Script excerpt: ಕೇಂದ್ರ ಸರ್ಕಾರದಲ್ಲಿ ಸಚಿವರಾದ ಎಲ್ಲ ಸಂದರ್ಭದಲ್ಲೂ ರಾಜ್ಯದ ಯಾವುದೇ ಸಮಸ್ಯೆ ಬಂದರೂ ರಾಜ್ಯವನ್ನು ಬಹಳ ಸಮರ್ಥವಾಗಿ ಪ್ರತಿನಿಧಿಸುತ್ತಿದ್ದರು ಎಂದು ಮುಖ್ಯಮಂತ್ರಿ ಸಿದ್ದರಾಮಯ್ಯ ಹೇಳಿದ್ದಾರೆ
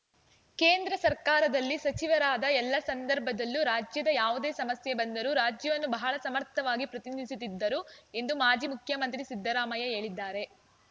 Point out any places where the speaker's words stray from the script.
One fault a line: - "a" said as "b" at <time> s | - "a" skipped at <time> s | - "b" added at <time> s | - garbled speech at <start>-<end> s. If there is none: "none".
- "ಮಾಜಿ" added at 8.4 s